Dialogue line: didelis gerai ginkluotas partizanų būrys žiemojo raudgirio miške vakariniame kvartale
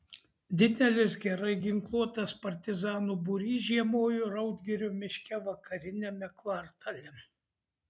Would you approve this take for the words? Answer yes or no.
yes